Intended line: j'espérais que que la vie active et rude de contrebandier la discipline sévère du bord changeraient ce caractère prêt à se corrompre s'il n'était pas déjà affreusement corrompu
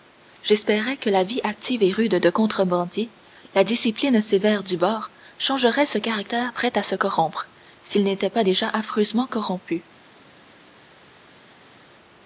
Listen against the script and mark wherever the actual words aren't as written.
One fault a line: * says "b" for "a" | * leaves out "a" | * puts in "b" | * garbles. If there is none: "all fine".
* leaves out "que"